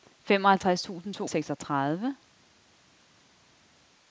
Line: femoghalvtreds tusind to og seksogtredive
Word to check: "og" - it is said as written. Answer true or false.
true